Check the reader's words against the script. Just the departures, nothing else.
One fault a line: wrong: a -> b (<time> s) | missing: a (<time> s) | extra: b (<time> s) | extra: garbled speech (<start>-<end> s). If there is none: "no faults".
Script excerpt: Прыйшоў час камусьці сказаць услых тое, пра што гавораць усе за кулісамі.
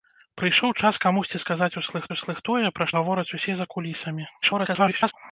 extra: услых (2.2 s)
missing: што (2.9 s)
extra: garbled speech (4.4-5.1 s)